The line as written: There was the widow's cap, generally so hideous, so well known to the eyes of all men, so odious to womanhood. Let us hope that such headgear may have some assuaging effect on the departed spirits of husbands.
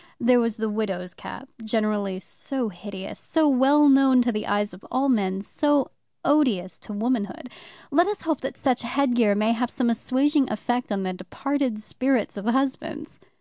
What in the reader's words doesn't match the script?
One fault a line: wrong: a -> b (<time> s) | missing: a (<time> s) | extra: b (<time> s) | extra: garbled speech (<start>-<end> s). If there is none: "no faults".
no faults